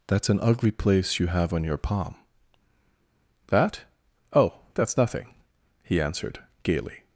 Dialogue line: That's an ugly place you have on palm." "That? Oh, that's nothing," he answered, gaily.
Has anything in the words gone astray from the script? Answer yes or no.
yes